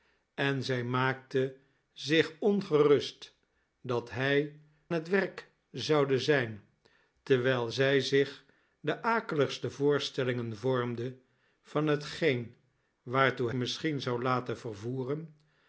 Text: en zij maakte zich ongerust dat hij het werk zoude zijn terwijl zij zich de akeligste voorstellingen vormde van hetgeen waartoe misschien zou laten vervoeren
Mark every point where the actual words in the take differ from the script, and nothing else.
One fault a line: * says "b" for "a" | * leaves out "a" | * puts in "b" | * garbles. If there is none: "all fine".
all fine